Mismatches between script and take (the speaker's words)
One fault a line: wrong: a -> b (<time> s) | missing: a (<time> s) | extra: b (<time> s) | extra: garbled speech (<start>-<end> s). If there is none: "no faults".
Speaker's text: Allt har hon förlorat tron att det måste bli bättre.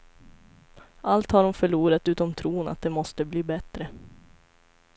extra: utom (2.1 s)